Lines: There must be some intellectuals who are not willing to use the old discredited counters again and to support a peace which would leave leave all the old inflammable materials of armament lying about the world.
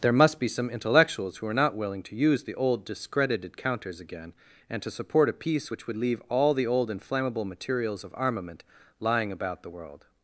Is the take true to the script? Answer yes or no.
no